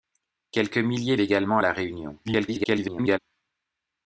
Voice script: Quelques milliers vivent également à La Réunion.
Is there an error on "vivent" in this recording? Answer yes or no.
yes